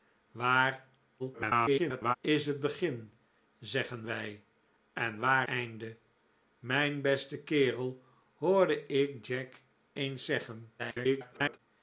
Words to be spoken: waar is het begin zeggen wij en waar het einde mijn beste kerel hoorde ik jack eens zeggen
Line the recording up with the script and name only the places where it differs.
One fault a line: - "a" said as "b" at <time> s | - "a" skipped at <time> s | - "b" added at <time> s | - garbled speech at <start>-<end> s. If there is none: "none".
- garbled speech at 1.2-2.2 s
- "het" skipped at 5.5 s
- garbled speech at 10.8-11.6 s